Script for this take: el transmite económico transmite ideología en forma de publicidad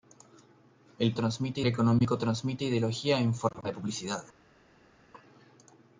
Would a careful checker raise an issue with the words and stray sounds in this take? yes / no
no